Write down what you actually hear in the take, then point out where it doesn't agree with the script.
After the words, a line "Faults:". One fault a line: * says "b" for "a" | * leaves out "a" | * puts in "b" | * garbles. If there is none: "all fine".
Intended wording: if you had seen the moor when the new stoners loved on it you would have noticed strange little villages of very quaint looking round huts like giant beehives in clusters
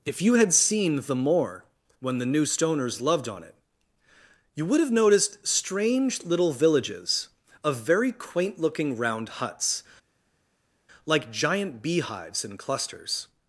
if you had seen the moor when the new stoners loved on it you would have noticed strange little villages of very quaint looking round huts like giant beehives in clusters
Faults:
all fine